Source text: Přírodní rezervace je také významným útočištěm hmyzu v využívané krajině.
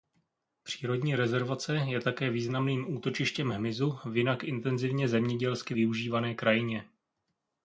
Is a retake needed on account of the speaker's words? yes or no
yes